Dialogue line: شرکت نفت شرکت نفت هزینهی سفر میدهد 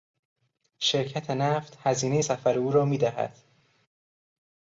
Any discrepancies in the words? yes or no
yes